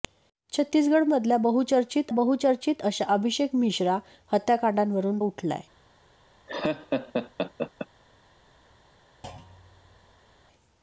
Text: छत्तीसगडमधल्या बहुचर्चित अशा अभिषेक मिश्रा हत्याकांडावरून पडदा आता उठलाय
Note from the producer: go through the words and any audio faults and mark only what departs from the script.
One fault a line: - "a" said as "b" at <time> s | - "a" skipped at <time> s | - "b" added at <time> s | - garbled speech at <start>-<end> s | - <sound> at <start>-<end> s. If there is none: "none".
- "बहुचर्चित" added at 2.1 s
- "पडदा आता" skipped at 5.2 s
- laugh at 6.5-7.9 s
- thud at 9.2-10.3 s